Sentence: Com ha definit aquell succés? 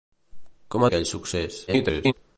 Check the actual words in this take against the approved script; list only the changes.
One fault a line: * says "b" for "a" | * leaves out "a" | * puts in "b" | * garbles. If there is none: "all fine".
* leaves out "definit"
* garbles